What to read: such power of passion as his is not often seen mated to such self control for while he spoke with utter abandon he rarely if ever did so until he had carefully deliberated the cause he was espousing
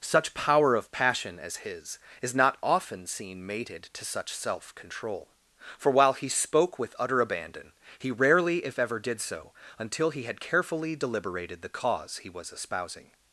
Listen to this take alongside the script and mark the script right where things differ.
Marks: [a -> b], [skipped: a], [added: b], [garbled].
such power of passion as his is not often seen mated to such self control for while he spoke with utter abandon he rarely if ever did so until he had carefully deliberated the cause he was espousing